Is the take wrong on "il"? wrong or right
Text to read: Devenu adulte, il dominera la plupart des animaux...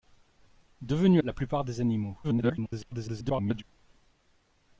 wrong